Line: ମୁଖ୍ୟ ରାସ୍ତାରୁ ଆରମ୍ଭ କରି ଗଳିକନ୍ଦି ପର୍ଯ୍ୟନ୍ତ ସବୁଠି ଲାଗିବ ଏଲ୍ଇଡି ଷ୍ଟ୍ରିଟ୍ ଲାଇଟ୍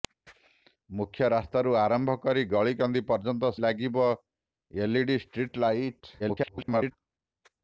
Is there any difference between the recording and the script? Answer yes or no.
yes